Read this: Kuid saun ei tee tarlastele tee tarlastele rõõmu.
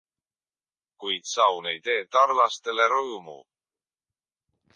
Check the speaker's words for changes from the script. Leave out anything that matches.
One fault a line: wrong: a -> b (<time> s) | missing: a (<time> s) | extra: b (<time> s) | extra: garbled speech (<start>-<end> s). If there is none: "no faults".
missing: tee tarlastele (2.9 s)